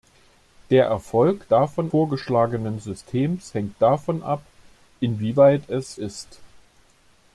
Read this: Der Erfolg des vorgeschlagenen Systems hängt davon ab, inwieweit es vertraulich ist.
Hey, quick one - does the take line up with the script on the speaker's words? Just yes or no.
no